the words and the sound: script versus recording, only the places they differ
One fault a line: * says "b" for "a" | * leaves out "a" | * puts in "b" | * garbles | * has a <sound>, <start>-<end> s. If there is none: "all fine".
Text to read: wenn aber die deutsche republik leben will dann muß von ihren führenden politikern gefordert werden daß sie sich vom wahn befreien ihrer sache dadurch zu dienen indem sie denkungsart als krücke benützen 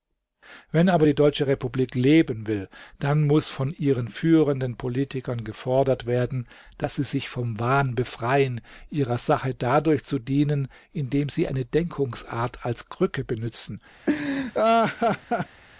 * puts in "eine"
* has a laugh, 14.1-15.6 s